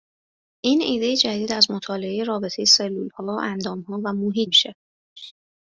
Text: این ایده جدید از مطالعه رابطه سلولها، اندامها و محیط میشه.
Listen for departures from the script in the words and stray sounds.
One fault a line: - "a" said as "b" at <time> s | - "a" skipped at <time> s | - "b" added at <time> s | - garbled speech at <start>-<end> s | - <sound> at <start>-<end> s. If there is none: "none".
- laugh at 5.2-5.3 s